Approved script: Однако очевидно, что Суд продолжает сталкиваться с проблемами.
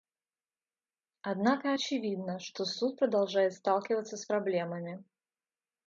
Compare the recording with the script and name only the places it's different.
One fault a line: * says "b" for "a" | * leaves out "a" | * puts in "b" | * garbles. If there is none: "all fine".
all fine